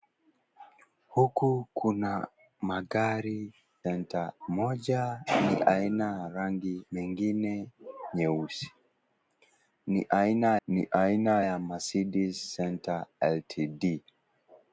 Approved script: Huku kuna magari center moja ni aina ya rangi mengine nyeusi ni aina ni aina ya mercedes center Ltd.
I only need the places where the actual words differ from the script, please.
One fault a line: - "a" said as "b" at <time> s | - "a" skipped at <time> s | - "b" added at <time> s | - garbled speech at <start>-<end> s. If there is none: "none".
none